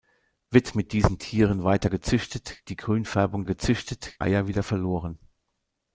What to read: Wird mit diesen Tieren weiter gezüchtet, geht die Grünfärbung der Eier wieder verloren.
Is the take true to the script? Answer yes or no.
no